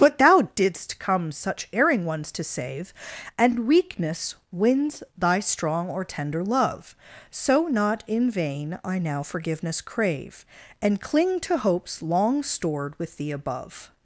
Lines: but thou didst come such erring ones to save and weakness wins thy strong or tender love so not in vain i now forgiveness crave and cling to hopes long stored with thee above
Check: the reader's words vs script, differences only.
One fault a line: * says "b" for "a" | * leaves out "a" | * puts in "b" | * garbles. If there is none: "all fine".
all fine